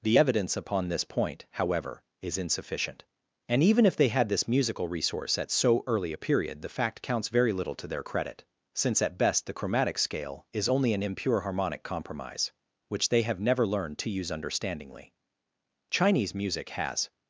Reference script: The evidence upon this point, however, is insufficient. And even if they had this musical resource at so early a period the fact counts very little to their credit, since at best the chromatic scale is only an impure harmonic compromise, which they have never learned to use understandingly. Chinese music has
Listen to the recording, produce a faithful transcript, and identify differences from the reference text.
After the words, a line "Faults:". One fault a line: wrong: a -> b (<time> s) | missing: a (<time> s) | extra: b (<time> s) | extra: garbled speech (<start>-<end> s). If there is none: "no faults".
The evidence upon this point, however, is insufficient. And even if they had this musical resource at so early a period the fact counts very little to their credit, since at best the chromatic scale is only an impure harmonic compromise, which they have never learned to use understandingly. Chinese music has
Faults:
no faults